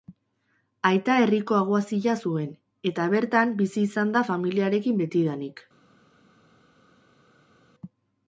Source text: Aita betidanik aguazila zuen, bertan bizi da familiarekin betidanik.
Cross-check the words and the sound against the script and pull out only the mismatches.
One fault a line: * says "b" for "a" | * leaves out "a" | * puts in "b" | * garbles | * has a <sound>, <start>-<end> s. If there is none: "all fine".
* says "herriko" for "betidanik"
* puts in "eta"
* puts in "izan"